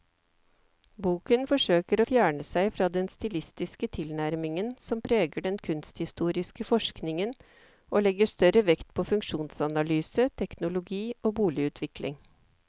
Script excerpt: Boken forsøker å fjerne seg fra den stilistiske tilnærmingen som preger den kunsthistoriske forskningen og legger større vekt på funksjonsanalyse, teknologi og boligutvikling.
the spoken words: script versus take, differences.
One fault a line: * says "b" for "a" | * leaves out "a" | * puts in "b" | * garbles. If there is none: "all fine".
all fine